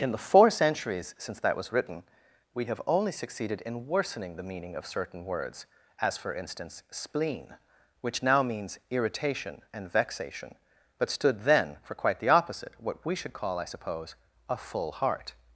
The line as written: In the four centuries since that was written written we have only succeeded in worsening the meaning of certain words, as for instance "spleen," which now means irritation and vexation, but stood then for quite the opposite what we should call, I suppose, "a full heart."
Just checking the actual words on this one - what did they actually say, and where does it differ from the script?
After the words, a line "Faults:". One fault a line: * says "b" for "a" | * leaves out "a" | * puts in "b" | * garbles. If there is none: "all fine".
In the four centuries since that was written we have only succeeded in worsening the meaning of certain words, as for instance "spleen," which now means irritation and vexation, but stood then for quite the opposite what we should call, I suppose, "a full heart."
Faults:
* leaves out "written"